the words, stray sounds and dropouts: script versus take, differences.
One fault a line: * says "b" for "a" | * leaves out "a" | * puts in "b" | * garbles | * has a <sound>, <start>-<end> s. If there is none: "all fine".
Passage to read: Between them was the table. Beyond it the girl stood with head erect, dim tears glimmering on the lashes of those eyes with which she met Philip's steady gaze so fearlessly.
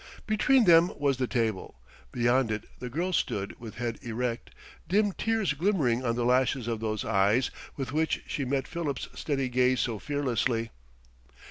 all fine